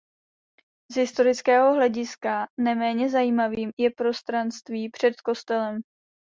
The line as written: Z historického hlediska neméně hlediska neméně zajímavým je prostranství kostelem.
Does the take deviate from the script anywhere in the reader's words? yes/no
yes